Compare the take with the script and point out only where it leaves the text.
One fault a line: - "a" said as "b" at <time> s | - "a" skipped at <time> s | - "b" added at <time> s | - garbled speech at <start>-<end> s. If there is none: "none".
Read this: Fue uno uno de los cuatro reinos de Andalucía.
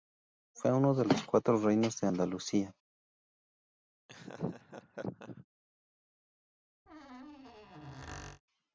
- "uno" skipped at 0.9 s